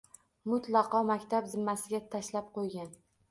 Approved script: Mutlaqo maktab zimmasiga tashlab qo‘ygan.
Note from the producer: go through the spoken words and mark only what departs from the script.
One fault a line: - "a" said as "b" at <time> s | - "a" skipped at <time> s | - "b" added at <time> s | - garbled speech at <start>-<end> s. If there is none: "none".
none